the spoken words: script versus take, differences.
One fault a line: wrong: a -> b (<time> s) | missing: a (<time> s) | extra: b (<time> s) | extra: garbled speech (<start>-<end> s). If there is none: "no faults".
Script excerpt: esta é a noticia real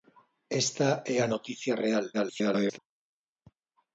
extra: garbled speech (2.1-2.8 s)